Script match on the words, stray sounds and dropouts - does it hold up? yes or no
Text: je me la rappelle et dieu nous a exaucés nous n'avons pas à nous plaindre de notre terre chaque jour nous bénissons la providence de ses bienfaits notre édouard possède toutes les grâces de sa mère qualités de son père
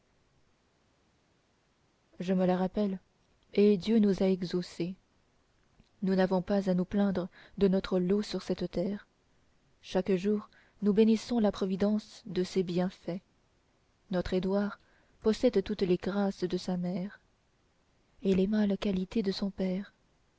no